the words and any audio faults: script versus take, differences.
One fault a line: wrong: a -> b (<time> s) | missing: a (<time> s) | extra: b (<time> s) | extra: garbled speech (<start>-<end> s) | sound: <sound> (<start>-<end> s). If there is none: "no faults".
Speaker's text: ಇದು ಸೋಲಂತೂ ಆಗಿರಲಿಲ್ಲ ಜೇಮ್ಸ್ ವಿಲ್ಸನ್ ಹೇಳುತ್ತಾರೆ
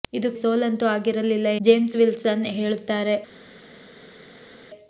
no faults